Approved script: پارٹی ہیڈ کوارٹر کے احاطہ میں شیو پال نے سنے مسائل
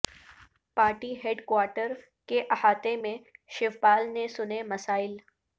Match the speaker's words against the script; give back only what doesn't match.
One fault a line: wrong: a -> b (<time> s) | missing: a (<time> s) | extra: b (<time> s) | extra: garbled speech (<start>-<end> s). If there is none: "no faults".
no faults